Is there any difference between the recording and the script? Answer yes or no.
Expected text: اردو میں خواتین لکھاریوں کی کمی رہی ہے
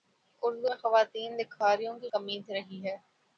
no